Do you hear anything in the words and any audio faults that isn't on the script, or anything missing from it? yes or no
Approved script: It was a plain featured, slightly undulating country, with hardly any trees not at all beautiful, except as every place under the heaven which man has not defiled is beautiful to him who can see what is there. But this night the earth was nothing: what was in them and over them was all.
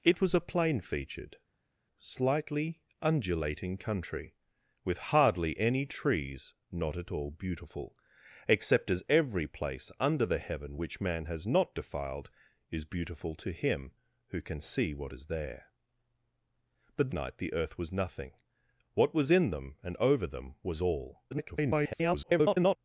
yes